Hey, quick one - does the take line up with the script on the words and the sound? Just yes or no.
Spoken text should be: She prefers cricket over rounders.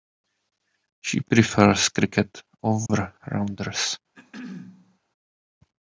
no